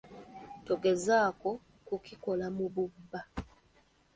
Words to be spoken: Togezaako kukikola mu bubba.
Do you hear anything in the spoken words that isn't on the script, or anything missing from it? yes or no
no